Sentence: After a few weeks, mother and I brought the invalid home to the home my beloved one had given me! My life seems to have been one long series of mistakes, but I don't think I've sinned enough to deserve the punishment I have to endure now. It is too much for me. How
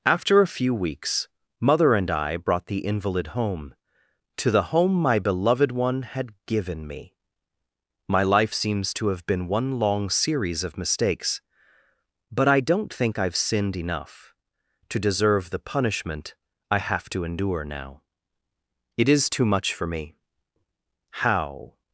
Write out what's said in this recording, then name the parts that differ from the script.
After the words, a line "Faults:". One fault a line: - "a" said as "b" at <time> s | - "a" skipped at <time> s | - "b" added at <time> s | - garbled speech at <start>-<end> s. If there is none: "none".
After a few weeks, mother and I brought the invalid home to the home my beloved one had given me! My life seems to have been one long series of mistakes, but I don't think I've sinned enough to deserve the punishment I have to endure now. It is too much for me. How
Faults:
none